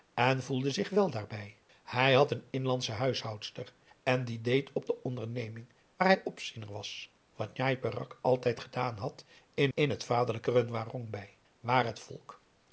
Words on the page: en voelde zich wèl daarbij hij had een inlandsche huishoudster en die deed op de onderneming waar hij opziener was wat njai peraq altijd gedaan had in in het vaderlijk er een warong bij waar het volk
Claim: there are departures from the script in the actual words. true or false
false